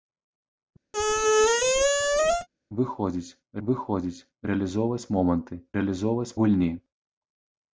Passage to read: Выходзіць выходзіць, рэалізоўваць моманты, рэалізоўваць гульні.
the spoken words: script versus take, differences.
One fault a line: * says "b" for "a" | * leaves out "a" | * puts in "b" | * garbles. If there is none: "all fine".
all fine